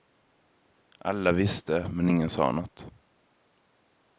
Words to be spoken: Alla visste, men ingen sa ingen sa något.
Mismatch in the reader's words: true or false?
true